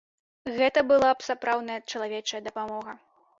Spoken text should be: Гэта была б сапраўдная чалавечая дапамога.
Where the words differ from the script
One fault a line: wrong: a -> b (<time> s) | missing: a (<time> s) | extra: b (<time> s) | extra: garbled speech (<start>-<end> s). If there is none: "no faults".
no faults